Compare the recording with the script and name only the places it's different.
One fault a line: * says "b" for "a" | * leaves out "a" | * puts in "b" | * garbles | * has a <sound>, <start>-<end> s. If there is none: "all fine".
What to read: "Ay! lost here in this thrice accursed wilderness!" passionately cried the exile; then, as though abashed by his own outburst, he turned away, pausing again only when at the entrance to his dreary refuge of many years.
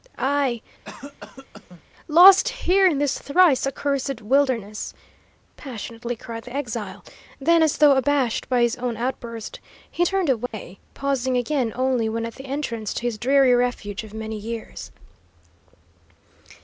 * has a cough, 0.8-1.8 s
* has a dropout, 10.5-10.5 s